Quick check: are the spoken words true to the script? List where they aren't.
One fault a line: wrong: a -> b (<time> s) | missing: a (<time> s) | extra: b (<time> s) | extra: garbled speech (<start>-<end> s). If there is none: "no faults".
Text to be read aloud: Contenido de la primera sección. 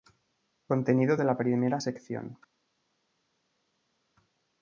no faults